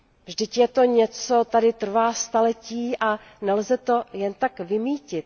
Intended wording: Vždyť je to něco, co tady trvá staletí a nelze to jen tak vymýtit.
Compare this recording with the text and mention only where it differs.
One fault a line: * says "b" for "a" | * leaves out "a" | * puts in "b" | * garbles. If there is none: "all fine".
* leaves out "co"